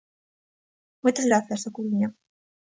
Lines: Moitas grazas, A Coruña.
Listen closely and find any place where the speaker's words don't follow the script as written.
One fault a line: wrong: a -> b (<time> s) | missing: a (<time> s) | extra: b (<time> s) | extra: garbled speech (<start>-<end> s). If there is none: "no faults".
no faults